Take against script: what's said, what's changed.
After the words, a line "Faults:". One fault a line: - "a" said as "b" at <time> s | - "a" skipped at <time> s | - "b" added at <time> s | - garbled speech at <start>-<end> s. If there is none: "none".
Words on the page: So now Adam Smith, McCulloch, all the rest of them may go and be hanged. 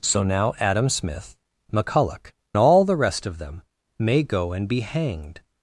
So now Adam Smith, McCulloch, all the rest of them may go and be hanged.
Faults:
none